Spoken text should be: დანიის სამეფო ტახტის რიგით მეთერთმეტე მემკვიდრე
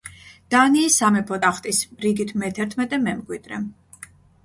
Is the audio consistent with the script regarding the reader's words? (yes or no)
yes